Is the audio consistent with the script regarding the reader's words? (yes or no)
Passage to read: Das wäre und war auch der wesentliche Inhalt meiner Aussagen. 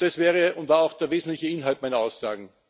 yes